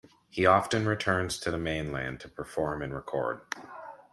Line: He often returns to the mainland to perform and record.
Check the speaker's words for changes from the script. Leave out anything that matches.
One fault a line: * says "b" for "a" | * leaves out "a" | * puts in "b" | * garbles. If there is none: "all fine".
all fine